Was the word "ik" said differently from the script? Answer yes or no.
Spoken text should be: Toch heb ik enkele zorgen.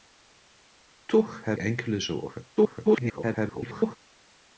yes